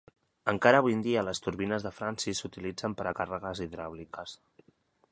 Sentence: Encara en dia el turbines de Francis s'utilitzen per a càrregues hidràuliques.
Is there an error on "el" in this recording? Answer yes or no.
yes